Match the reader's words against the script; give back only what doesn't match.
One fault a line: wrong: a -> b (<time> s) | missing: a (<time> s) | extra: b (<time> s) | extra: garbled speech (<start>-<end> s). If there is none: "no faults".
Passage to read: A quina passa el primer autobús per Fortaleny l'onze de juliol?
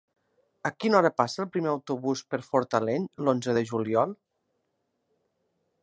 extra: hora (1.0 s)